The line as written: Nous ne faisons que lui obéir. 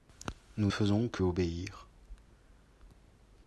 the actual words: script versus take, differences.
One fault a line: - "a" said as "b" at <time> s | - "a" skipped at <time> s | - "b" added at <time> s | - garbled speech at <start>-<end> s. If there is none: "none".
- "ne" skipped at 0.7 s
- "lui" skipped at 1.2 s